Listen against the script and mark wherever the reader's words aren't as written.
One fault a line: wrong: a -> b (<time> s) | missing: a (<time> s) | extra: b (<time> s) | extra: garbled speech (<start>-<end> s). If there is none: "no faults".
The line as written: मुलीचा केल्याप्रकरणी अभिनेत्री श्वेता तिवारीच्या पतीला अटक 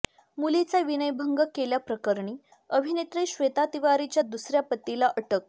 extra: विनयभंग (0.8 s)
extra: दुसऱ्या (4.2 s)